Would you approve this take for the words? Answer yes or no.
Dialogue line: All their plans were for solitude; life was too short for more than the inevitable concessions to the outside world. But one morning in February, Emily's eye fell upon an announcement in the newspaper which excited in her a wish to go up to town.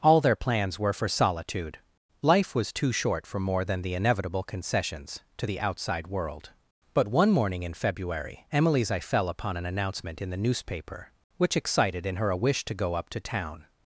yes